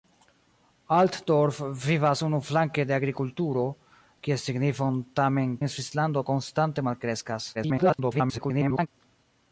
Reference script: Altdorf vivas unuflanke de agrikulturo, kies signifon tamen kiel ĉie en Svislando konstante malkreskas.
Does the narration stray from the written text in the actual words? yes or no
yes